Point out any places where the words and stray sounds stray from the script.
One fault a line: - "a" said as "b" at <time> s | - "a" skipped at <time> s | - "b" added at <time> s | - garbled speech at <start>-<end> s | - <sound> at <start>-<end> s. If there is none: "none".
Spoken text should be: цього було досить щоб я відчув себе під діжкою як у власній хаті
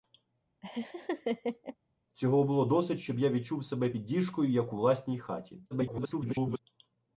- laugh at 0.6-1.8 s
- garbled speech at 5.7-6.6 s